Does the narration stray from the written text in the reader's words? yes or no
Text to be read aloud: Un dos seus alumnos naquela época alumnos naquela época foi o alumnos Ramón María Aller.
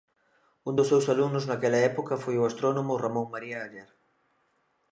yes